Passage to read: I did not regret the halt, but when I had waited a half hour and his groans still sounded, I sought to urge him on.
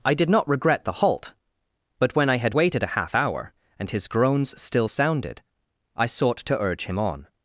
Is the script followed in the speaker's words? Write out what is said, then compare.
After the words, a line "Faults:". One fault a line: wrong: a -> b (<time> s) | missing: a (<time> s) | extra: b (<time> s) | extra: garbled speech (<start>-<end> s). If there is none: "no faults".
I did not regret the halt, but when I had waited a half hour and his groans still sounded, I sought to urge him on.
Faults:
no faults